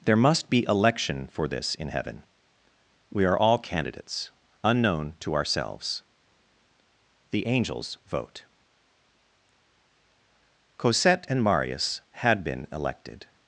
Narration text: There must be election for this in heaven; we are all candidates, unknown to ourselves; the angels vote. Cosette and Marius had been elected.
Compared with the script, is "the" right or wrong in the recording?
right